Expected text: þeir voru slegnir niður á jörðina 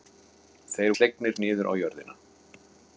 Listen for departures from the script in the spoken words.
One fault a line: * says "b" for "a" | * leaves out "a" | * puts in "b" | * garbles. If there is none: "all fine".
* leaves out "voru"